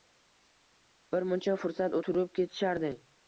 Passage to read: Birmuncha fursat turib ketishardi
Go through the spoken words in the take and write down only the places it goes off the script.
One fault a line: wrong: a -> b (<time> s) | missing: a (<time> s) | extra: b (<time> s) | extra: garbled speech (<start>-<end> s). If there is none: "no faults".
no faults